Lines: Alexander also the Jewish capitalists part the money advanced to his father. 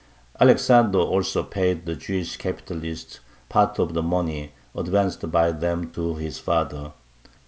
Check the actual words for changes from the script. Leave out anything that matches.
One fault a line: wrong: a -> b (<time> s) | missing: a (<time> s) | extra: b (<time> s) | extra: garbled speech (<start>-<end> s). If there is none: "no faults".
extra: paid (1.4 s)
extra: of (3.8 s)
extra: by them (5.3 s)